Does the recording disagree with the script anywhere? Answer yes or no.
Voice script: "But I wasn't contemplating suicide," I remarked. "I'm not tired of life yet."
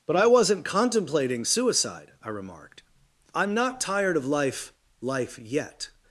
yes